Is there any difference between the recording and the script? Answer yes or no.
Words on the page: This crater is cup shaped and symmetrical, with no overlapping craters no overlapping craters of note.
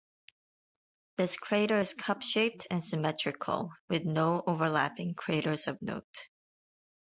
yes